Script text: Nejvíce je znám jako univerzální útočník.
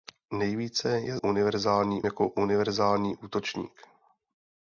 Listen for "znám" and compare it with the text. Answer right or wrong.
wrong